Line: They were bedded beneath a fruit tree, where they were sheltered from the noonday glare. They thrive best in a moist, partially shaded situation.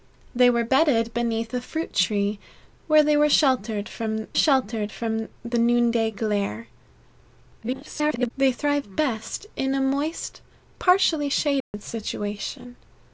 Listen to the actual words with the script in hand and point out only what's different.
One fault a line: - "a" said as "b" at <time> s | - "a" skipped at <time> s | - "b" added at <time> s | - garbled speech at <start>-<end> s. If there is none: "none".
- "sheltered from" added at 4.3 s
- garbled speech at 7.6-8.3 s